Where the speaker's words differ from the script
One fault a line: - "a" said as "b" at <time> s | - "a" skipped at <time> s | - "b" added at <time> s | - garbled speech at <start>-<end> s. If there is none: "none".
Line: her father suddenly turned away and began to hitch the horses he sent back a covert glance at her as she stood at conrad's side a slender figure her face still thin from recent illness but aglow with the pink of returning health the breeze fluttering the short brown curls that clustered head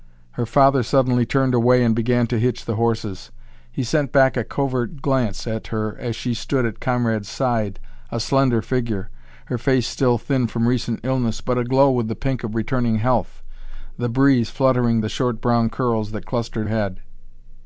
none